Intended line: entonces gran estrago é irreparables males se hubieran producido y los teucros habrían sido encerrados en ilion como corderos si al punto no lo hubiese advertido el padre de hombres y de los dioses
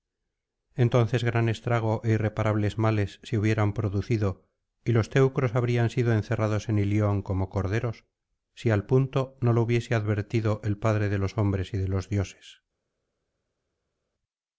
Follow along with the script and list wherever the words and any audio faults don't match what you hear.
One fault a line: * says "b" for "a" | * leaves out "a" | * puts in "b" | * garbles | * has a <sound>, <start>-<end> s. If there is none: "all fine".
* puts in "los"